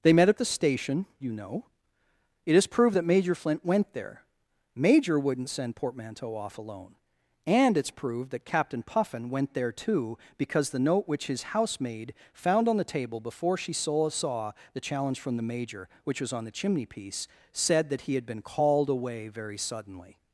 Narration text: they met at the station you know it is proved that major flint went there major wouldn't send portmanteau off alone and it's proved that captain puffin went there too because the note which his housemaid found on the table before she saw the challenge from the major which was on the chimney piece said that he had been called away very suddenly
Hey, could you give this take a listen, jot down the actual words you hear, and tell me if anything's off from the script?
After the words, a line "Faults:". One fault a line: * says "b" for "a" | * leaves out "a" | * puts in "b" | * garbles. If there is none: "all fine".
they met at the station you know it is proved that major flint went there major wouldn't send portmanteau off alone and it's proved that captain puffin went there too because the note which his housemaid found on the table before she saw saw the challenge from the major which was on the chimney piece said that he had been called away very suddenly
Faults:
* puts in "saw"